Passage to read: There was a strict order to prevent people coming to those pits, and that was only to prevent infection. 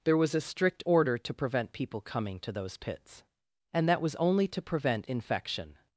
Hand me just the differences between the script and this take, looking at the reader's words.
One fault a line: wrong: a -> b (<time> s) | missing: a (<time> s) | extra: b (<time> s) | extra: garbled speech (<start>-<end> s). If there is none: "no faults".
no faults